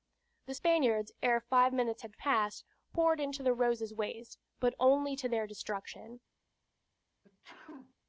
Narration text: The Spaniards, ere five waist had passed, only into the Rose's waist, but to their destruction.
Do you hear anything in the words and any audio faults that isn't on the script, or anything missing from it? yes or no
yes